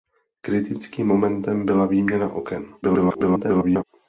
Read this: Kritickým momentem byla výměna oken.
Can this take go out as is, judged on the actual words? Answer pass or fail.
fail